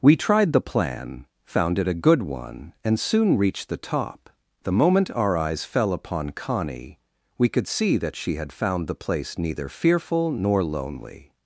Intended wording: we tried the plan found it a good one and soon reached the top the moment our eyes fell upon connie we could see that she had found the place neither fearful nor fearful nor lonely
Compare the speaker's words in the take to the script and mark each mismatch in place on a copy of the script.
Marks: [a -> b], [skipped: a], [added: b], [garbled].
we tried the plan found it a good one and soon reached the top the moment our eyes fell upon connie we could see that she had found the place neither fearful nor [skipped: fearful nor] lonely